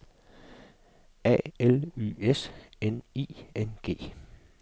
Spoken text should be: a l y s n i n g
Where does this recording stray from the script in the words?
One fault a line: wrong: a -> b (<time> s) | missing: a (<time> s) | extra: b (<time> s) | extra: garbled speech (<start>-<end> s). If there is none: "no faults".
no faults